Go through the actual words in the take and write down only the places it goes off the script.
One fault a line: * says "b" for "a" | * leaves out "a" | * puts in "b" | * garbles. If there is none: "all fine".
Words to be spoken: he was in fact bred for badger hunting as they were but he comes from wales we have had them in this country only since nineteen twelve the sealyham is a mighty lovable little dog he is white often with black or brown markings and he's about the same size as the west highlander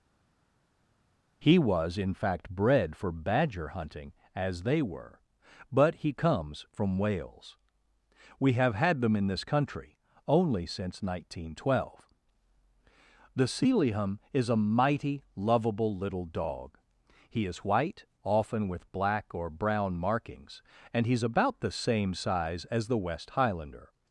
all fine